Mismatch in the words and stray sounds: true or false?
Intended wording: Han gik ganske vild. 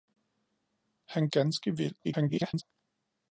true